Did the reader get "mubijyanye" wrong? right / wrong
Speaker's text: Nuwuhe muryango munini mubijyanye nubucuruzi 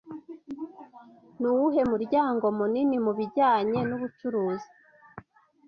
right